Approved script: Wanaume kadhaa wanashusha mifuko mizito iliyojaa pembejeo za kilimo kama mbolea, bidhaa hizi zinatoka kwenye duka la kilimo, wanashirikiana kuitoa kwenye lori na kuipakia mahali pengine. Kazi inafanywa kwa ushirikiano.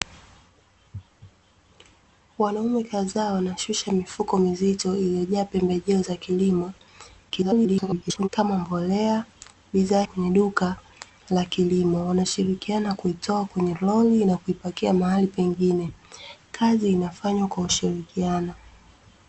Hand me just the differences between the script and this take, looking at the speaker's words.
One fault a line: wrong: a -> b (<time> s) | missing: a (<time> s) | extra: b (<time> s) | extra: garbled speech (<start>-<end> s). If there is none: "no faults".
extra: garbled speech (7.3-8.3 s)
missing: hizi zinatoka (10.0 s)